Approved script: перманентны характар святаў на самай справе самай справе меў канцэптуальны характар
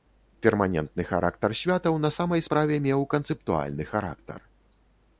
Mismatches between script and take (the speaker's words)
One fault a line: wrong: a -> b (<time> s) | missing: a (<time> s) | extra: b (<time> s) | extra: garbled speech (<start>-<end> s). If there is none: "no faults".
missing: самай справе (2.8 s)